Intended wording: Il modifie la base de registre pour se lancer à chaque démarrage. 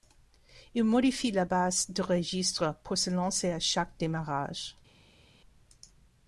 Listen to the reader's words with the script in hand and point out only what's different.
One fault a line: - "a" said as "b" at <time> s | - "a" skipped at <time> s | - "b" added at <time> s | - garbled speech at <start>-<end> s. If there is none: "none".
none